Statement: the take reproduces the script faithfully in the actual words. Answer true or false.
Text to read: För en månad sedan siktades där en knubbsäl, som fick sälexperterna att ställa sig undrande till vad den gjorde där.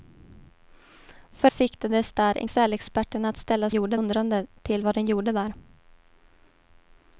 false